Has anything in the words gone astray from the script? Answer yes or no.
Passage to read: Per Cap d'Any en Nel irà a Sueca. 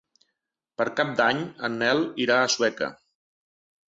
no